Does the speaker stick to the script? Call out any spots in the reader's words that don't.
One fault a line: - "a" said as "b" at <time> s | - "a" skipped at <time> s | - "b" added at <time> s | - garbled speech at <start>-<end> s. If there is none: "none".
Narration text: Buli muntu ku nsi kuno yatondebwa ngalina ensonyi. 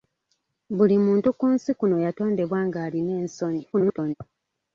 - garbled speech at 3.7-4.1 s